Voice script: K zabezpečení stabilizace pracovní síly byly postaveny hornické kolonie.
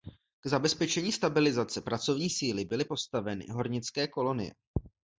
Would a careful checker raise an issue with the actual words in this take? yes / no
no